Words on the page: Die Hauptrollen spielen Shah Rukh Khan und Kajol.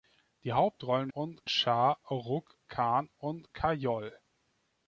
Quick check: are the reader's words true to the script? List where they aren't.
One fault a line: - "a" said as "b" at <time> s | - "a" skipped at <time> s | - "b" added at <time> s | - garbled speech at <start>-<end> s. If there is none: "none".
- "spielen" said as "und" at 1.1 s